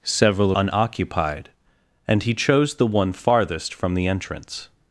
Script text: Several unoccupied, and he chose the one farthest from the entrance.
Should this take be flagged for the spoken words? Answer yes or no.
no